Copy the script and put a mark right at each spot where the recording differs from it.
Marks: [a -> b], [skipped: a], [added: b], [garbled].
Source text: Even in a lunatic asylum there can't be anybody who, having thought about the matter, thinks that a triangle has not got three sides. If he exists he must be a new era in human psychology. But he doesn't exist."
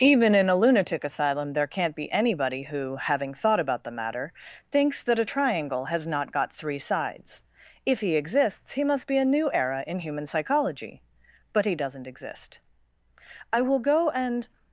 Even in a lunatic asylum there can't be anybody who, having thought about the matter, thinks that a triangle has not got three sides. If he exists he must be a new era in human psychology. But he doesn't exist." [added: I will go and]